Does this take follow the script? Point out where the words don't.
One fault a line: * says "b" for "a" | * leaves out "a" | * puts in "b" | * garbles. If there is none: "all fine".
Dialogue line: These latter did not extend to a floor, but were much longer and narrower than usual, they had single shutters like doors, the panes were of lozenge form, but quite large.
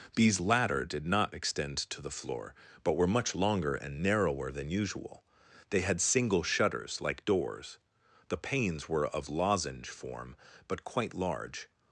* says "the" for "a"